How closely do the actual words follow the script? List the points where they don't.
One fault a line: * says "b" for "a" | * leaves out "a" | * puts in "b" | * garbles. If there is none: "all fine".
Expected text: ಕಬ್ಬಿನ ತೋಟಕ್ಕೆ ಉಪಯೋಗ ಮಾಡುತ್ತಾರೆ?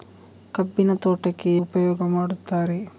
all fine